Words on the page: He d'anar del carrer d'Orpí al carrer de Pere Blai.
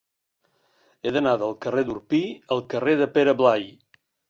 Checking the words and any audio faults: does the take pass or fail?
pass